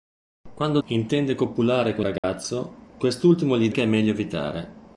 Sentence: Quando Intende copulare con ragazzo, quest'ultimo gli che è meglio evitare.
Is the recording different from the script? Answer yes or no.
no